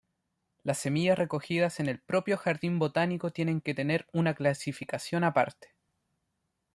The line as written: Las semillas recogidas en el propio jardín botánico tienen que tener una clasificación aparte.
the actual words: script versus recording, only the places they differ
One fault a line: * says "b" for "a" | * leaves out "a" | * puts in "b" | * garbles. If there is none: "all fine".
all fine